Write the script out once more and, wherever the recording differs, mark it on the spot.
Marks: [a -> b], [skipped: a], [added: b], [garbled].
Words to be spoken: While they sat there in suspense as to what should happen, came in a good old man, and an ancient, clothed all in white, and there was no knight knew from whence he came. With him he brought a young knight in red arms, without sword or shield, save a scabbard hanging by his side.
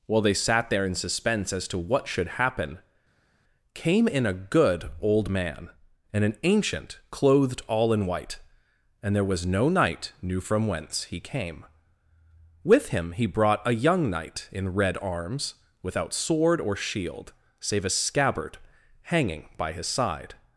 While they sat there in suspense as to what should happen, came in a good old man, and an ancient, clothed all in white, and there was no knight knew from whence he came. With him he brought a young knight in red arms, without sword or shield, save a scabbard hanging by his side.